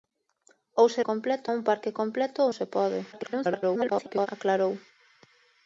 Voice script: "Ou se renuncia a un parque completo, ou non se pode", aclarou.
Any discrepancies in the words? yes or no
yes